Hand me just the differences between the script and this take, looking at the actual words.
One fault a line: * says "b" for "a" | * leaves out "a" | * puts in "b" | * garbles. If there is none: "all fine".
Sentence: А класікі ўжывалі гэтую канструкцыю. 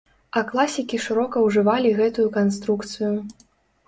* puts in "шырока"